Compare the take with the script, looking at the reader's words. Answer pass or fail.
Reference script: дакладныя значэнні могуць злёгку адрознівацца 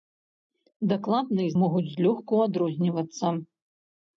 fail